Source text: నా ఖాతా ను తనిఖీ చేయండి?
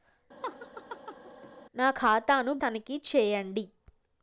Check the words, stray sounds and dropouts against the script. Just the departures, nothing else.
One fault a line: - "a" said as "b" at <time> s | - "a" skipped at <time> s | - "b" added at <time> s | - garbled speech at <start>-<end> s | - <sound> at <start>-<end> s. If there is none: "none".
- laugh at 0.4-1.5 s